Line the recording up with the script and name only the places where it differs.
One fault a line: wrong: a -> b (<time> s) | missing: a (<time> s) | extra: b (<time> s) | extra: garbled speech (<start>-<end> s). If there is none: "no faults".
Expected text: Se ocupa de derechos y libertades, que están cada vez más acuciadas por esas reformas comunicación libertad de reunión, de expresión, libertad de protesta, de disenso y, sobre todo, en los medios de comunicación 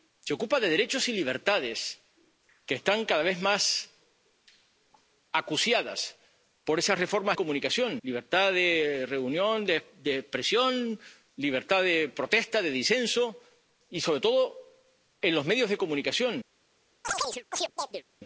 no faults